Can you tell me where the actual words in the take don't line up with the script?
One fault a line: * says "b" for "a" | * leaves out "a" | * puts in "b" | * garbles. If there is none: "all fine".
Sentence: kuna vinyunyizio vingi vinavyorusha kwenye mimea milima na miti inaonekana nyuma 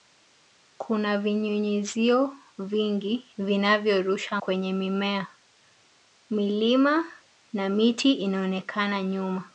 all fine